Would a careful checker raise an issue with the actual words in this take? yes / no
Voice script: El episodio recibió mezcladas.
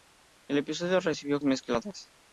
no